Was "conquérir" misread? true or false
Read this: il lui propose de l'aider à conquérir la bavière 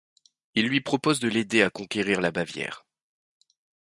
false